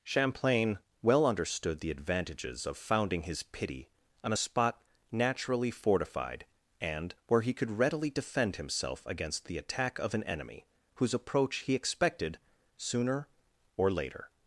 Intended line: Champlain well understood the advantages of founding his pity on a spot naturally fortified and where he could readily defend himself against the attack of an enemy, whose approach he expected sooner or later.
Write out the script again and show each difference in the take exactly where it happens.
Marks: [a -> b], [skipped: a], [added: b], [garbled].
Champlain well understood the advantages of founding his pity on a spot naturally fortified and where he could readily defend himself against the attack of an enemy, whose approach he expected sooner or later.